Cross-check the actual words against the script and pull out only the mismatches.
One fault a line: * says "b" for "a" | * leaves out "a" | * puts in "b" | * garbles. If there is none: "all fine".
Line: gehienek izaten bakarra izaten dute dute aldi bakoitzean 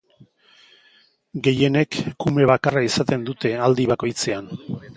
* says "kume" for "izaten"
* leaves out "dute"